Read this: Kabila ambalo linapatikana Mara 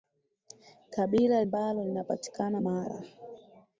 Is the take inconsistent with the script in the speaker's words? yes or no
no